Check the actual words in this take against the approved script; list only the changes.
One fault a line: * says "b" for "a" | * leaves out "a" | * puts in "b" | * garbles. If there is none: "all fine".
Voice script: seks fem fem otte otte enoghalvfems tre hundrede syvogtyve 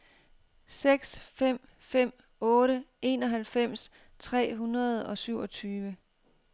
* leaves out "otte"
* puts in "og"